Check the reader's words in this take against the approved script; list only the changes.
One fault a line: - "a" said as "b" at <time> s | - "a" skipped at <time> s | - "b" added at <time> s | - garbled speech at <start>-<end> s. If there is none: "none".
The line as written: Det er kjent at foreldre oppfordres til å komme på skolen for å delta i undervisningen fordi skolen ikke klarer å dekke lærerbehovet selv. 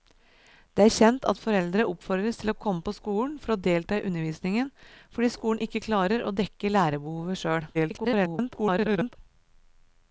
- garbled speech at 7.7-9.2 s